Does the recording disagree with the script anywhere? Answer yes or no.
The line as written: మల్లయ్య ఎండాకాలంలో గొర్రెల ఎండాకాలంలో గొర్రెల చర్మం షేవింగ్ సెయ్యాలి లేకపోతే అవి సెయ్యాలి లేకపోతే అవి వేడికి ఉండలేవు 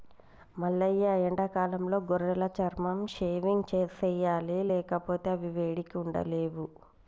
yes